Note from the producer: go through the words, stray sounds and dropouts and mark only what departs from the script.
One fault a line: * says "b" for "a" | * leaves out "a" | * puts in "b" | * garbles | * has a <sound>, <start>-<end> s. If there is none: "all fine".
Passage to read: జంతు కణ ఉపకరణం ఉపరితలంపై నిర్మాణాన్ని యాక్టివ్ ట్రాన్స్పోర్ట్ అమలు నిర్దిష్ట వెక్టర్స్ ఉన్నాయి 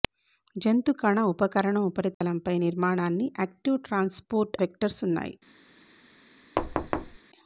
* has a dropout, 2.1-2.2 s
* leaves out "అమలు నిర్దిష్ట"
* has a thud, 6.6-7.2 s